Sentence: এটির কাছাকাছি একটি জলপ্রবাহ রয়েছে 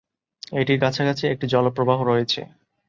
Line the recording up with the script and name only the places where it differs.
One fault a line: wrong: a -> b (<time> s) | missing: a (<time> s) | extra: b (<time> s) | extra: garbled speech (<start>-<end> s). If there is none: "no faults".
no faults